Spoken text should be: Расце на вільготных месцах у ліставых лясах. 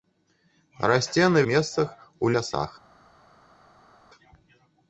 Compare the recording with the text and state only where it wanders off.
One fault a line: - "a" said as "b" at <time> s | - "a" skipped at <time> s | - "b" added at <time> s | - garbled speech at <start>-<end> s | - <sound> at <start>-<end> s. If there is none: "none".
- "вільготных" skipped at 1.4 s
- "ліставых" skipped at 2.3 s